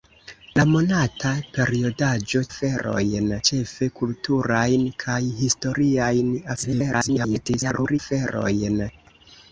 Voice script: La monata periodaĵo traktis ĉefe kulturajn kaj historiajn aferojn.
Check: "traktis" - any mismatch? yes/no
yes